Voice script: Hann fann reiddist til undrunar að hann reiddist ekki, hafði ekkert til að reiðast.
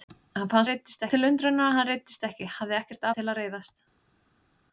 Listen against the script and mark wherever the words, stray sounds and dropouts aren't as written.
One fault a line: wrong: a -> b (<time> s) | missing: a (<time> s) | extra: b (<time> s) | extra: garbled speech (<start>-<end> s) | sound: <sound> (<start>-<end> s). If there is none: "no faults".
no faults